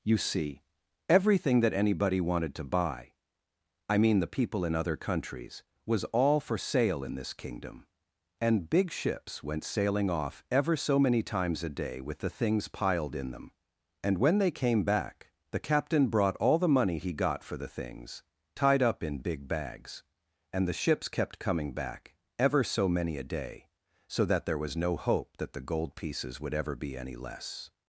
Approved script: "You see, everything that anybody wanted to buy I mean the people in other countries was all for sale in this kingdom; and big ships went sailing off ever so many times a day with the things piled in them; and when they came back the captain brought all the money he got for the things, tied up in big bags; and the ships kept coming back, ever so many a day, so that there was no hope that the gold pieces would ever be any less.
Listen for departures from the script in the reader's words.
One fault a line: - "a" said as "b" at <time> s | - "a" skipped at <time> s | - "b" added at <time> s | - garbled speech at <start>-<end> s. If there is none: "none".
none